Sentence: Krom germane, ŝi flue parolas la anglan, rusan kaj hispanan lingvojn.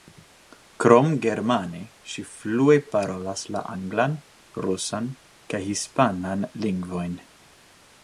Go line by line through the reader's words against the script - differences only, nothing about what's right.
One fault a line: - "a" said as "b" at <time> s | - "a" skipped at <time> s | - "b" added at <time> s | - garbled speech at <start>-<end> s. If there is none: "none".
none